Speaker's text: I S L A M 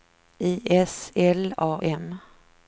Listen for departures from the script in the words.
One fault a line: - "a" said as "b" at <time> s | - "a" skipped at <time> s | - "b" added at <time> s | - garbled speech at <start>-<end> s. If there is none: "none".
none